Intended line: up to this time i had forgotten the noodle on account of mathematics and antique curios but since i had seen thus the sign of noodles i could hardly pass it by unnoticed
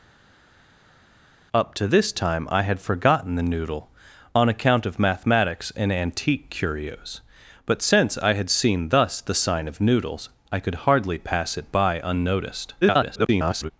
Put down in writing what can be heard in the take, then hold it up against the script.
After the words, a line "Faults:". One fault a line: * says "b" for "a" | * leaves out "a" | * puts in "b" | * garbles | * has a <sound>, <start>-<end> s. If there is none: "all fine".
up to this time i had forgotten the noodle on account of mathematics and antique curios but since i had seen thus the sign of noodles i could hardly pass it by unnoticed [garbled]
Faults:
* garbles